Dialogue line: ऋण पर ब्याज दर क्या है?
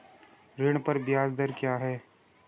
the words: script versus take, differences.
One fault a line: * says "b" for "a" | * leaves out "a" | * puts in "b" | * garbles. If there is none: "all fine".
all fine